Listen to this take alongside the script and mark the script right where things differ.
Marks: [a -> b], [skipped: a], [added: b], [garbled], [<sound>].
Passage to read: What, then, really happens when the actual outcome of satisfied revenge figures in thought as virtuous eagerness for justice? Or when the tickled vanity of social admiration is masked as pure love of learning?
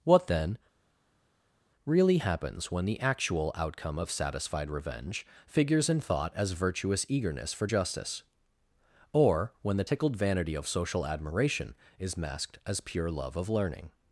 What, then, really happens when the actual outcome of satisfied revenge figures in thought as virtuous eagerness for justice? Or when the tickled vanity of social admiration is masked as pure love of learning?